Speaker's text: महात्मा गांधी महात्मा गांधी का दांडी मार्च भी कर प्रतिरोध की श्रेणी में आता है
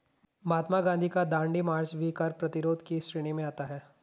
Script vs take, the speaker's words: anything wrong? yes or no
yes